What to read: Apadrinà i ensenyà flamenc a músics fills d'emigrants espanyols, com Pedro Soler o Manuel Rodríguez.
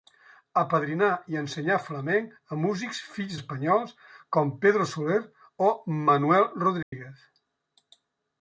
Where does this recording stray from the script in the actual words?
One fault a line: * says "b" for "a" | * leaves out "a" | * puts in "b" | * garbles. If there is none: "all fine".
* leaves out "d'emigrants"